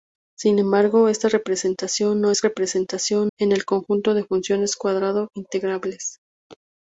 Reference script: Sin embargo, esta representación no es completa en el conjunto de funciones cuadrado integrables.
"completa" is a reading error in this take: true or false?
true